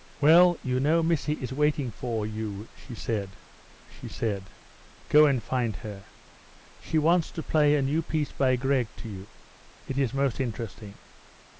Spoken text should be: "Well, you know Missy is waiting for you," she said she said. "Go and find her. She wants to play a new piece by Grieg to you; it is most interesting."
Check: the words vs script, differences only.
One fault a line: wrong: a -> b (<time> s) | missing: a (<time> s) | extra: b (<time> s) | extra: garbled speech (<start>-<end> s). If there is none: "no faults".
no faults